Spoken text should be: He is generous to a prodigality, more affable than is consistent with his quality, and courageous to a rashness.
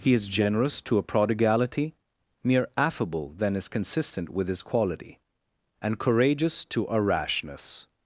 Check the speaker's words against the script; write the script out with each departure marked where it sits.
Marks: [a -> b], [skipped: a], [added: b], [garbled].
He is generous to a prodigality, [more -> mere] affable than is consistent with his quality, and courageous to a rashness.